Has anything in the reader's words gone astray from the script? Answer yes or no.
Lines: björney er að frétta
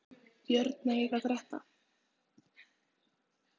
no